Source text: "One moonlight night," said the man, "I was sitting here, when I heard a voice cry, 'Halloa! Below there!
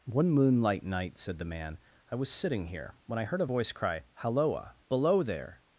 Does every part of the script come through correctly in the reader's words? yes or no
yes